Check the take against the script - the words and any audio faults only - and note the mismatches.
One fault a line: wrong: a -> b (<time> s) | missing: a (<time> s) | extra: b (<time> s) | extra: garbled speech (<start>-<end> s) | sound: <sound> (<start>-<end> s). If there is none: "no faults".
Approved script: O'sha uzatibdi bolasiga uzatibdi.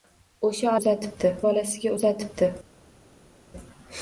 no faults